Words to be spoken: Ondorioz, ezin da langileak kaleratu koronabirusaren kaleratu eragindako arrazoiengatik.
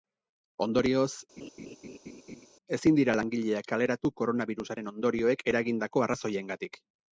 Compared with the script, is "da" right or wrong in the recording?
wrong